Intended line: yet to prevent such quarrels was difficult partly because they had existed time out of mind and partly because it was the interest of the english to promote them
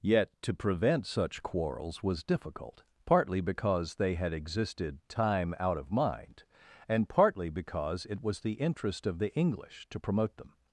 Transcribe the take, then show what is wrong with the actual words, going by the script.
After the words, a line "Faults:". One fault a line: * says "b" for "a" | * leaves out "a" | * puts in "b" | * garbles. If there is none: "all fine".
yet to prevent such quarrels was difficult partly because they had existed time out of mind and partly because it was the interest of the english to promote them
Faults:
all fine